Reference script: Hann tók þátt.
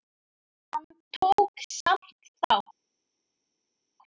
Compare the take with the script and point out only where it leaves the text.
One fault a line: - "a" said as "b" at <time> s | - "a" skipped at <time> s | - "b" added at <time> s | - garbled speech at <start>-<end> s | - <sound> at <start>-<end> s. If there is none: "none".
- "samt" added at 1.7 s